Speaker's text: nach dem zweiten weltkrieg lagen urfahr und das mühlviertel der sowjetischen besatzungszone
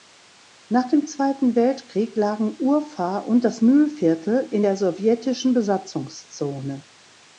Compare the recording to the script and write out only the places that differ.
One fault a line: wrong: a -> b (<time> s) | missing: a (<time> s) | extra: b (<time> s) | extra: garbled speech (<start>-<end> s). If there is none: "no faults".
extra: in (4.5 s)